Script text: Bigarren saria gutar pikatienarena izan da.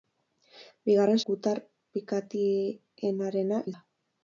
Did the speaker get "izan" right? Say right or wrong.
wrong